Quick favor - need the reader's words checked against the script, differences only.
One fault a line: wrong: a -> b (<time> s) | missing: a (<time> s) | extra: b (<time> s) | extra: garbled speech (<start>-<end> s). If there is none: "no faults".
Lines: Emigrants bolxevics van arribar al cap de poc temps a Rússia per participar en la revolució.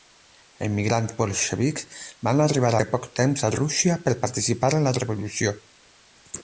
missing: al cap (2.7 s)